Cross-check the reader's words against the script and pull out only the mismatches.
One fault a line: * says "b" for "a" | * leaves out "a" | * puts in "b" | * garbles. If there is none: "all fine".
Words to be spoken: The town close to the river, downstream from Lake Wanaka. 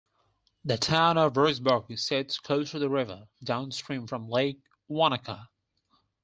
* puts in "of Roxburgh sits"